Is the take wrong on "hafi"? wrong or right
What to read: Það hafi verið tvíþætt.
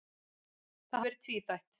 wrong